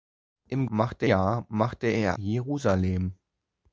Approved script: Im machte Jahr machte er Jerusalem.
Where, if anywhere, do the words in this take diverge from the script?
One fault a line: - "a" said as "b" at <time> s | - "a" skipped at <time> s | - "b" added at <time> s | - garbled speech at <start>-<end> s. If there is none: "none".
none